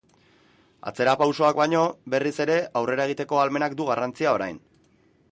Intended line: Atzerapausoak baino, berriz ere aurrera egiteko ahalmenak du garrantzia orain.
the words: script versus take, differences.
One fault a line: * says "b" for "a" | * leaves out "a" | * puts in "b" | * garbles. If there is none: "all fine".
all fine